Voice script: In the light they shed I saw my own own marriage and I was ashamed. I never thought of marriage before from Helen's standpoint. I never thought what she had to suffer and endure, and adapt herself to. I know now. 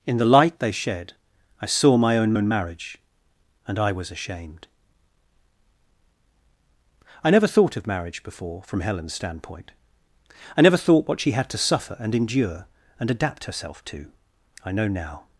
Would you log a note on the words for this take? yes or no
no